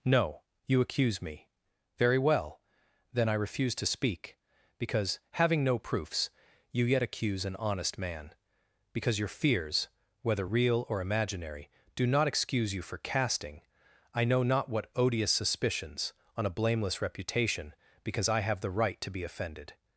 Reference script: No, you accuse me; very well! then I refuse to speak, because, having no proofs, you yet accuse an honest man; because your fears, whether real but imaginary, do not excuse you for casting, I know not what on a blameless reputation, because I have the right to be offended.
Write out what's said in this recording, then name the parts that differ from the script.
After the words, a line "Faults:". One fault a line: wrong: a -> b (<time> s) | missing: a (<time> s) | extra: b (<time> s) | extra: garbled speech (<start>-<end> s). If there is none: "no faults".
No, you accuse me; very well! then I refuse to speak, because, having no proofs, you yet accuse an honest man; because your fears, whether real or imaginary, do not excuse you for casting, I know not what odious suspicions, on a blameless reputation, because I have the right to be offended.
Faults:
wrong: but -> or (10.9 s)
extra: odious suspicions (15.0 s)